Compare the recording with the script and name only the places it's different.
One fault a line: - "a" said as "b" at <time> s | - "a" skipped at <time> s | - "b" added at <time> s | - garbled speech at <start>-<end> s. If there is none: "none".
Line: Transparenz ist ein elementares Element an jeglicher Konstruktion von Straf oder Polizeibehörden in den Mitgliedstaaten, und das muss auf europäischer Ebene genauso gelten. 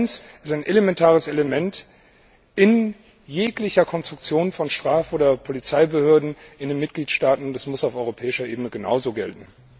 - "an" said as "in" at 2.5 s